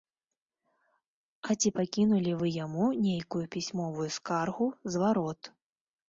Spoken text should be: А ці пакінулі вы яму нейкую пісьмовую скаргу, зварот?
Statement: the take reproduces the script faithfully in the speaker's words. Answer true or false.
true